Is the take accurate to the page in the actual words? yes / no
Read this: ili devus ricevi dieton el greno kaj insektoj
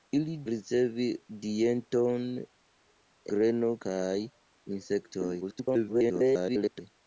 no